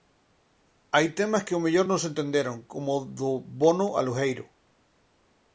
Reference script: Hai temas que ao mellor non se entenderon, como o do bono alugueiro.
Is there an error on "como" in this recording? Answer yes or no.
no